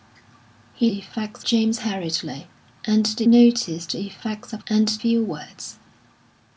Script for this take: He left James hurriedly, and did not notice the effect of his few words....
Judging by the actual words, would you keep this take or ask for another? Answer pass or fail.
fail